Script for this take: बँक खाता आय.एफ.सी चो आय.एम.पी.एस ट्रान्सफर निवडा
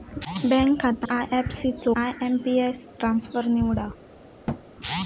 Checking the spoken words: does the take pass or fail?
pass